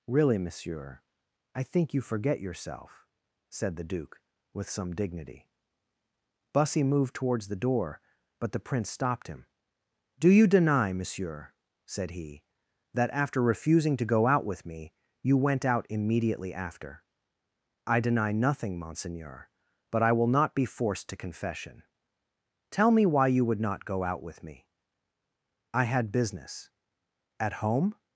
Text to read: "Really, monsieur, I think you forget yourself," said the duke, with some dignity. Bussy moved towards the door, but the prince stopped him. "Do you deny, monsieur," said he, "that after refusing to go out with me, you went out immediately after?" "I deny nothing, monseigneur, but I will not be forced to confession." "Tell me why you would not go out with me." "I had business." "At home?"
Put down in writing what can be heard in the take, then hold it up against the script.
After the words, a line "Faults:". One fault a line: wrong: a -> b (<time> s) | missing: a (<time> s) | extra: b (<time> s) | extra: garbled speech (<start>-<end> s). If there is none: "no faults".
"Really, monsieur, I think you forget yourself," said the duke, with some dignity. Bussy moved towards the door, but the prince stopped him. "Do you deny, monsieur," said he, "that after refusing to go out with me, you went out immediately after?" "I deny nothing, monseigneur, but I will not be forced to confession." "Tell me why you would not go out with me." "I had business." "At home?"
Faults:
no faults